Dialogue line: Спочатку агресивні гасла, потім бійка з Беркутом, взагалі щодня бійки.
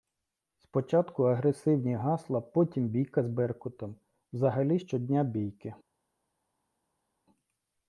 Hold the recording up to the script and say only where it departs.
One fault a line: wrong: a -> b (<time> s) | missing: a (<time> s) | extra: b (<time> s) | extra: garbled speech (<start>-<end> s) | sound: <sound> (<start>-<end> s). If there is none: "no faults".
no faults